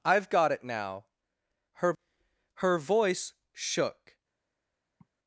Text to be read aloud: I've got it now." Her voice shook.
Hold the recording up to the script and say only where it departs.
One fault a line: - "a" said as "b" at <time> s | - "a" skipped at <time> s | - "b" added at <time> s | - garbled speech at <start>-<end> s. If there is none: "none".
- "Her" added at 2.5 s